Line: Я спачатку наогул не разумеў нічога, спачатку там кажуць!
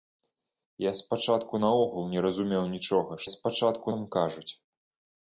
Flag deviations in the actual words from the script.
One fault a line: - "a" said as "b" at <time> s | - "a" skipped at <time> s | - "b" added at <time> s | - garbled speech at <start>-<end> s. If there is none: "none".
none